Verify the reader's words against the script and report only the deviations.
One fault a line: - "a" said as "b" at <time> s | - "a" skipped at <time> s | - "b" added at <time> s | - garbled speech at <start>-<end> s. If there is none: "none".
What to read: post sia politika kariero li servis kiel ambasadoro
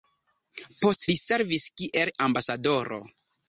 - "sia politika kariero" skipped at 1.0 s